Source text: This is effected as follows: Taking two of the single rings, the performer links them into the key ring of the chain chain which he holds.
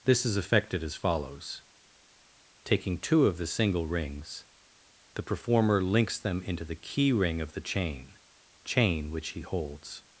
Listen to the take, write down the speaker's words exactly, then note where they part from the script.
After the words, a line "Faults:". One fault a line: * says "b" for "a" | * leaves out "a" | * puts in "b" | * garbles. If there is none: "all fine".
This is effected as follows: Taking two of the single rings, the performer links them into the key ring of the chain chain which he holds.
Faults:
all fine